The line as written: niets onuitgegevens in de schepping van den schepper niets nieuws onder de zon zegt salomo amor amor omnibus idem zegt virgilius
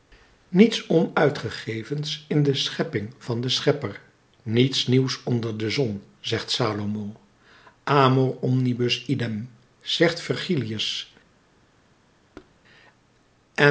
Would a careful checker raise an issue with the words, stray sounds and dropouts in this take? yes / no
yes